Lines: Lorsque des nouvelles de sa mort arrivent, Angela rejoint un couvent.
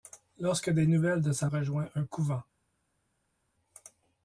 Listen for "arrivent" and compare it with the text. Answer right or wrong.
wrong